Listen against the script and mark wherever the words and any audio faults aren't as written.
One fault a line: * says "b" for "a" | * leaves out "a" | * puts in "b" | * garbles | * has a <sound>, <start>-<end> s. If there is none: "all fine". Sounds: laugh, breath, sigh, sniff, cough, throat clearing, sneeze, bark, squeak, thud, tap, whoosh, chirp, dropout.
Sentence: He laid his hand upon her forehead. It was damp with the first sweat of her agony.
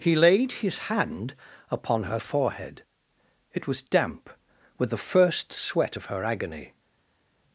all fine